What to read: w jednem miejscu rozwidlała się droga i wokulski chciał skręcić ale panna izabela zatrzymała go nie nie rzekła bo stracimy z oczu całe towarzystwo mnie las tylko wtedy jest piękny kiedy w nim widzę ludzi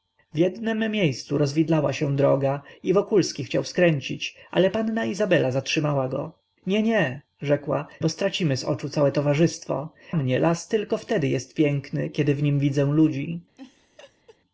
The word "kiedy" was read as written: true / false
true